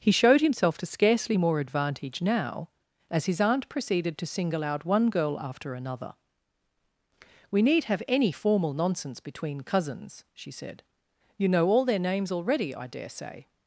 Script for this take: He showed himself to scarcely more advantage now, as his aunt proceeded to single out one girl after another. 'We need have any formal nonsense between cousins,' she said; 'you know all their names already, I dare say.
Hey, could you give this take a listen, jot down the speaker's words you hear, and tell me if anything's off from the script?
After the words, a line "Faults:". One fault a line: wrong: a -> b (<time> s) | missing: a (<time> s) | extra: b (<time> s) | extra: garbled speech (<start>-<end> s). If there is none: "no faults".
He showed himself to scarcely more advantage now, as his aunt proceeded to single out one girl after another. 'We need have any formal nonsense between cousins,' she said; 'you know all their names already, I dare say.
Faults:
no faults